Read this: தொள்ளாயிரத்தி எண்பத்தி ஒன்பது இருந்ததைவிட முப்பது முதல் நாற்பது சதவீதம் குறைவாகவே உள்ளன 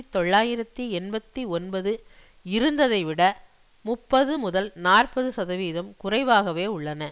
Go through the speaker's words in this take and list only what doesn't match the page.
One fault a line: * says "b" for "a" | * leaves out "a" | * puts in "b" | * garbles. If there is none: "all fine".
all fine